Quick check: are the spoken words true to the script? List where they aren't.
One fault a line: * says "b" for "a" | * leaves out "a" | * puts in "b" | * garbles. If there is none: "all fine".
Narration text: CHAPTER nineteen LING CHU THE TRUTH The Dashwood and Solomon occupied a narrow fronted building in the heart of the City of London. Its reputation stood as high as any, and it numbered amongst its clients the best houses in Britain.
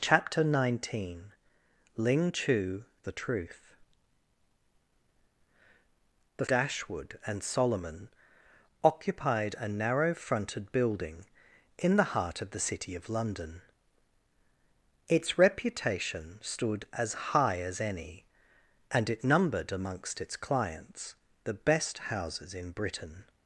all fine